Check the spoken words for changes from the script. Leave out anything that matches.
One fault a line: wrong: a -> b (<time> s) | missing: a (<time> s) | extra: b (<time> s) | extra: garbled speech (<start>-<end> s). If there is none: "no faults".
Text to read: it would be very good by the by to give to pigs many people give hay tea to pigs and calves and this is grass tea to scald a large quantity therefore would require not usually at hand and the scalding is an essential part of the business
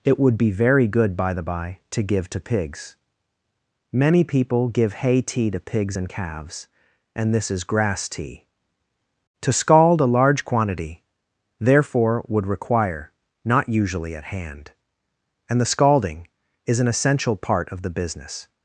no faults